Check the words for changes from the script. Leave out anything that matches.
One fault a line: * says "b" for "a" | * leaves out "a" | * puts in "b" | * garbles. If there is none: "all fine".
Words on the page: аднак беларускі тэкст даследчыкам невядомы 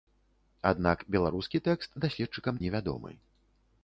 all fine